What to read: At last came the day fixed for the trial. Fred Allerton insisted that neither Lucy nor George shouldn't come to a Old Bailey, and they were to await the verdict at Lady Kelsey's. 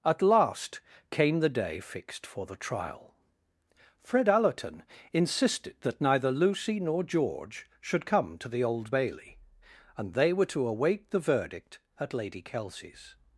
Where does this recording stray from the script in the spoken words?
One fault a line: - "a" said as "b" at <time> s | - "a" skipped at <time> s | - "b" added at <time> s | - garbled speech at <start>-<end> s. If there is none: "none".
- "shouldn't" said as "should" at 7.8 s
- "a" said as "the" at 8.5 s